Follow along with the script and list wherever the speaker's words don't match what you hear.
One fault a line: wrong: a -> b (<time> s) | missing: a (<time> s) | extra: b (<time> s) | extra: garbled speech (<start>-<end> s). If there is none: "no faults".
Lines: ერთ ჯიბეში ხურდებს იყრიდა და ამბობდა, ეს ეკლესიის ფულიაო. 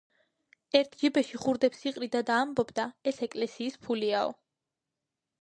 no faults